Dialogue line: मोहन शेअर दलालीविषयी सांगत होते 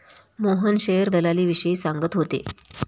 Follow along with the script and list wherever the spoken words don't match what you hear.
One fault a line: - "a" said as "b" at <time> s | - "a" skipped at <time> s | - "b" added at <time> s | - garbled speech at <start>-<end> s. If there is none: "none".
none